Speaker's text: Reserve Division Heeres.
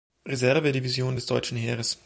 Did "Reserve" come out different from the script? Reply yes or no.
no